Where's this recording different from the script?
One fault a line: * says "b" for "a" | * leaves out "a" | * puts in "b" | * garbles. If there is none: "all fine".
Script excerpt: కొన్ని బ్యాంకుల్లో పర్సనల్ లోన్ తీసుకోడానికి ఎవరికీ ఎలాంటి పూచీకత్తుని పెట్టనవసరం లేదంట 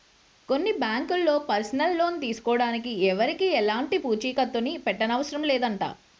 all fine